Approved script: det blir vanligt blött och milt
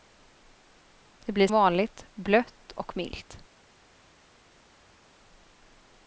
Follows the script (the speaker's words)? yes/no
yes